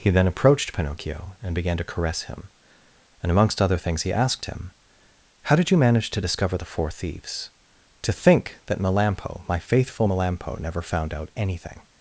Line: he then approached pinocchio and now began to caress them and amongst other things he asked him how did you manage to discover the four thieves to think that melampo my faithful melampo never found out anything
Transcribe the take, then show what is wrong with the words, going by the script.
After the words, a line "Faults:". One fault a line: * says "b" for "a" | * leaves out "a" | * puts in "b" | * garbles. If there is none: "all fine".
he then approached pinocchio and began to caress him and amongst other things he asked him how did you manage to discover the four thieves to think that melampo my faithful melampo never found out anything
Faults:
* leaves out "now"
* says "him" for "them"